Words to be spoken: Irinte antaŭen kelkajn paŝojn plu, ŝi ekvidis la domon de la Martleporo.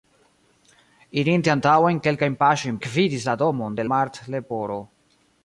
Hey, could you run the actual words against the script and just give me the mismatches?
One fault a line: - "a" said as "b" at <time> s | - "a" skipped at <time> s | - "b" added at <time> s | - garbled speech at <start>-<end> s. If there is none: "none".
- "plu ŝi" skipped at 2.8 s
- "la" skipped at 3.9 s